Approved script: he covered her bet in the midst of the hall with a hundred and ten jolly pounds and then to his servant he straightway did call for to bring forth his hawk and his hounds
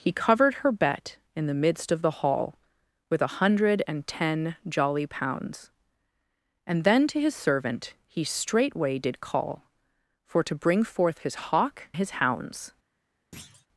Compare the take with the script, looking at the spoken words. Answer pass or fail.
fail